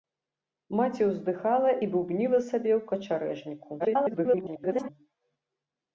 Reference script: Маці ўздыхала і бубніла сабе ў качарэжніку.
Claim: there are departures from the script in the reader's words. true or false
true